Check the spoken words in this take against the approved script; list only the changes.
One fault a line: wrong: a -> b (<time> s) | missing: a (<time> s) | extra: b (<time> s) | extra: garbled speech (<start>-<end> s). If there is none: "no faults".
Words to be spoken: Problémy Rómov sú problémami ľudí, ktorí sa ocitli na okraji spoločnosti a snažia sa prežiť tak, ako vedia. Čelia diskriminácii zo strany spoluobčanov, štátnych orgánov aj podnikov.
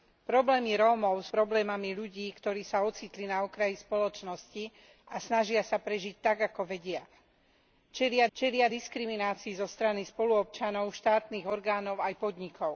missing: sú (1.3 s)
extra: čelia (8.3 s)